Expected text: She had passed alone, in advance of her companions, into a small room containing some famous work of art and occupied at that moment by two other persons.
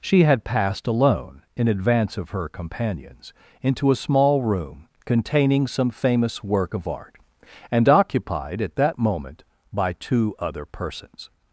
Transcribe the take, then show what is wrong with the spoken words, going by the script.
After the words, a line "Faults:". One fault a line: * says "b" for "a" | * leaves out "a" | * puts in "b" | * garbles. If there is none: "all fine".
She had passed alone, in advance of her companions, into a small room containing some famous work of art and occupied at that moment by two other persons.
Faults:
all fine